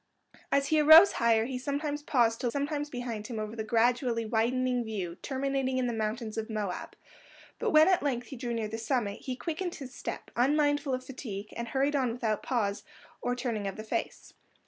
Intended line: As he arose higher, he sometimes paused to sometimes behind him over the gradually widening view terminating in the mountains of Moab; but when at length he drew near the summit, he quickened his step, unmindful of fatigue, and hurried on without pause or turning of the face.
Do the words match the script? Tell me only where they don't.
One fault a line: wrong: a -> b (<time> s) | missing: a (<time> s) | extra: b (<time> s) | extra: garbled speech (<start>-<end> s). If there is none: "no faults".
no faults